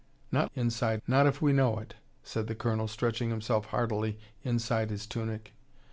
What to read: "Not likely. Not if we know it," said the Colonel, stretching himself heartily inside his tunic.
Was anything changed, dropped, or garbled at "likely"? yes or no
yes